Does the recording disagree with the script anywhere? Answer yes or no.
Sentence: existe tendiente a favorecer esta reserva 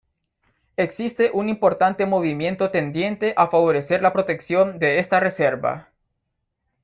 yes